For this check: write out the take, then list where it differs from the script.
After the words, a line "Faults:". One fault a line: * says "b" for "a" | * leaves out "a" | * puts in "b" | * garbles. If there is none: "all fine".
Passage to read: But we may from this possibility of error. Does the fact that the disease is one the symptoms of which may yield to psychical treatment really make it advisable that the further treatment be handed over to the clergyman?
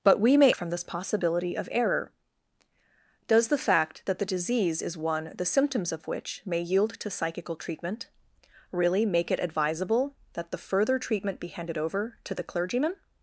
But we may from this possibility of error. Does the fact that the disease is one the symptoms of which may yield to psychical treatment really make it advisable that the further treatment be handed over to the clergyman?
Faults:
all fine